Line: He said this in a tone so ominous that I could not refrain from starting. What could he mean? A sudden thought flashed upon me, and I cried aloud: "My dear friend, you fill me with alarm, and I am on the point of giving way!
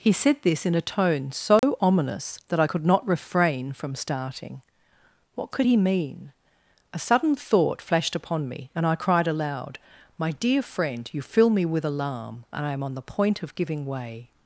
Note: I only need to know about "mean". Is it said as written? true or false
true